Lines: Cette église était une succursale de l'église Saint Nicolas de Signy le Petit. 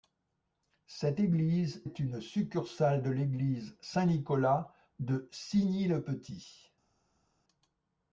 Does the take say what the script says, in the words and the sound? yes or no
no